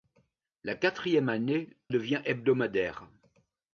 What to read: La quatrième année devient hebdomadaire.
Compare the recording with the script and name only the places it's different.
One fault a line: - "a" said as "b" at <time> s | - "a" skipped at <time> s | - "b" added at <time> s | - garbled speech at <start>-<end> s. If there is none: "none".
none